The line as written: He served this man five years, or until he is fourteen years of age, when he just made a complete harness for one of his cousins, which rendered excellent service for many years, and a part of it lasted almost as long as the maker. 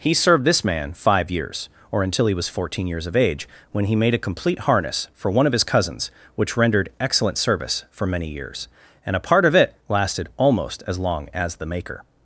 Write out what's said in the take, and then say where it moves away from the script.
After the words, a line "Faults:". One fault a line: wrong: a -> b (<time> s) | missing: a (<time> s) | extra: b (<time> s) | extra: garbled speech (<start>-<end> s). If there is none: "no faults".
He served this man five years, or until he was fourteen years of age, when he made a complete harness for one of his cousins, which rendered excellent service for many years, and a part of it lasted almost as long as the maker.
Faults:
wrong: is -> was (2.3 s)
missing: just (4.0 s)